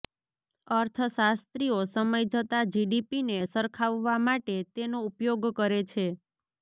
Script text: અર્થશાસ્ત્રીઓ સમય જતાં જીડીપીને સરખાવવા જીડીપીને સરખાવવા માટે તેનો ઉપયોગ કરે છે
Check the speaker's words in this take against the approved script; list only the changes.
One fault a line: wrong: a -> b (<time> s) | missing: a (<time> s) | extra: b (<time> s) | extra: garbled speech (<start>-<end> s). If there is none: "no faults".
missing: જીડીપીને સરખાવવા (4.2 s)